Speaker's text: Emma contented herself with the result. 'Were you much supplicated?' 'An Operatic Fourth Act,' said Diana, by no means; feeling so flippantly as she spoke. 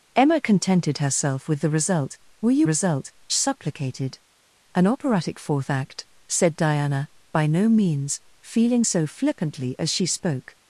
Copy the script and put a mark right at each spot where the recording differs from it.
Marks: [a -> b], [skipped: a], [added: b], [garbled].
Emma contented herself with the result. 'Were you [much -> result] supplicated?' 'An Operatic Fourth Act,' said Diana, by no means; feeling so flippantly as she spoke.